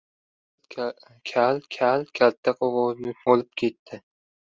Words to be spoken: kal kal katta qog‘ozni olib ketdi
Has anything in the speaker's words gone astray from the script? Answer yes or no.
no